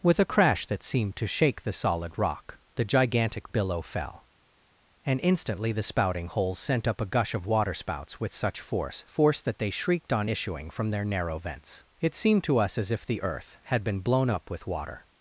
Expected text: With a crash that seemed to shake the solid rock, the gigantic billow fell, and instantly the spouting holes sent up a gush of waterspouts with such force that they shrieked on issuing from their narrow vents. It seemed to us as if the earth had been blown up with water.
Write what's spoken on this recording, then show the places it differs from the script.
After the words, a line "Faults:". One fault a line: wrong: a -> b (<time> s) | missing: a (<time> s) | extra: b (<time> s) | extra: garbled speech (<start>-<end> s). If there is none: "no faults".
With a crash that seemed to shake the solid rock, the gigantic billow fell, and instantly the spouting holes sent up a gush of waterspouts with such force force that they shrieked on issuing from their narrow vents. It seemed to us as if the earth had been blown up with water.
Faults:
extra: force (9.1 s)